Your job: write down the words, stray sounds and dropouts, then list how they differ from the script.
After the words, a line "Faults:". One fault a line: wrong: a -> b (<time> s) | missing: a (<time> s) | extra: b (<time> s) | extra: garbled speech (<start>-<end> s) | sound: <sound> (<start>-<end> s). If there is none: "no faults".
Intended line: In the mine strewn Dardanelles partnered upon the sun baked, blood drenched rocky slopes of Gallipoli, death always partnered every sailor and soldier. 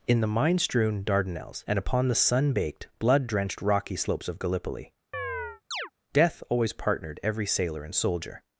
In the mine strewn Dardanelles and upon the sun baked, blood drenched rocky slopes of Gallipoli, death always partnered every sailor and soldier.
Faults:
wrong: partnered -> and (1.7 s)
sound: chirp (5.1-5.9 s)